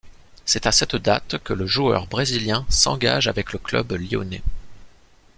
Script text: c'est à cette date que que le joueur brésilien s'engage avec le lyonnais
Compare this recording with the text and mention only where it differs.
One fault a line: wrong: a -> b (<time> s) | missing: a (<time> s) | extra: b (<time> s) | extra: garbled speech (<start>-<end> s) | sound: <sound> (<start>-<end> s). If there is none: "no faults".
missing: que (1.5 s)
extra: club (3.6 s)